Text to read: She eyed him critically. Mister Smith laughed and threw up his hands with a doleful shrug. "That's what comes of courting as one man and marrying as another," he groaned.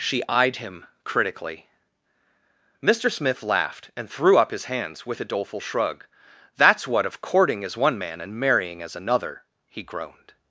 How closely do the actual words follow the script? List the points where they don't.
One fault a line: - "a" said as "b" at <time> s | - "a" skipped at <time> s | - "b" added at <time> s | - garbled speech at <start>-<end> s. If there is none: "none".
- "comes" skipped at 7.0 s